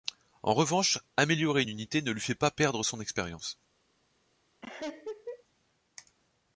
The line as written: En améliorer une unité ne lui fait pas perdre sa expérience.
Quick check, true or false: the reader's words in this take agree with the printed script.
false